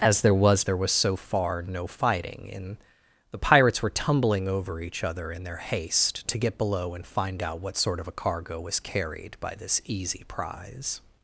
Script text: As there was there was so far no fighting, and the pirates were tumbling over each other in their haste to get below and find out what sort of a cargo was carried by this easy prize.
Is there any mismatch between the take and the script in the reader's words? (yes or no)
no